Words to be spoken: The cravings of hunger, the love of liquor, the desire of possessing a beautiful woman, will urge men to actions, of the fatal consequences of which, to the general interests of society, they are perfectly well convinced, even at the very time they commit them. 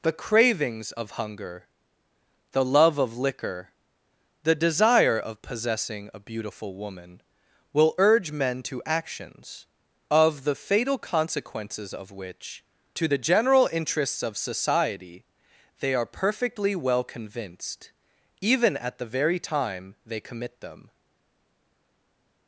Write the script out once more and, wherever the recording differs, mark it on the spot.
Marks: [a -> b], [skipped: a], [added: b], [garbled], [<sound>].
The cravings of hunger, the love of liquor, the desire of possessing a beautiful woman, will urge men to actions, of the fatal consequences of which, to the general interests of society, they are perfectly well convinced, even at the very time they commit them.